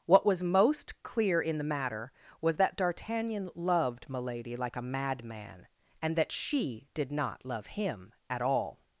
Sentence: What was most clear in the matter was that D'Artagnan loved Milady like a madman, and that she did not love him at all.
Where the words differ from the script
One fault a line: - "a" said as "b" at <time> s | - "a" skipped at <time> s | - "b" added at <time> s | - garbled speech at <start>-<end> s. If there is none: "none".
none